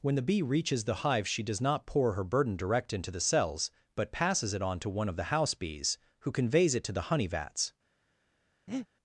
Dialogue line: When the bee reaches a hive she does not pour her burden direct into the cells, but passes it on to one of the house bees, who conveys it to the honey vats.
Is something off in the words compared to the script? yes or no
yes